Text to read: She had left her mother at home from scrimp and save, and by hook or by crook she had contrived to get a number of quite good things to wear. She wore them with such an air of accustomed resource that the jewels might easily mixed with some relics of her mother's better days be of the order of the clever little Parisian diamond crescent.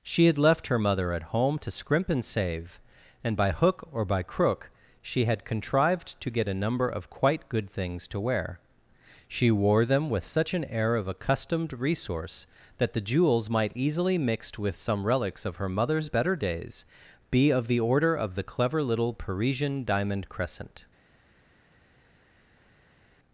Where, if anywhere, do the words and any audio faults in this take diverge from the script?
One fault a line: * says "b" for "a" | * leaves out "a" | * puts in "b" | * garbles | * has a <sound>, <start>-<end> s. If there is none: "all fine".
* says "to" for "from"